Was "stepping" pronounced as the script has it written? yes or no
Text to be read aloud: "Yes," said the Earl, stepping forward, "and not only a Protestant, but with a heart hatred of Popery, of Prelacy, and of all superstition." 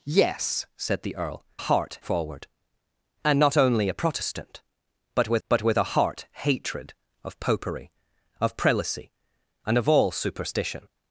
no